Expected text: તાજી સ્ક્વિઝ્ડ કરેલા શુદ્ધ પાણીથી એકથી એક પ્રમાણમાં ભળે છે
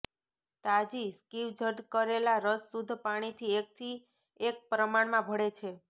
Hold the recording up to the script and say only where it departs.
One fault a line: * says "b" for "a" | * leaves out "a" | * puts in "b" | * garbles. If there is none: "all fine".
* puts in "રસ"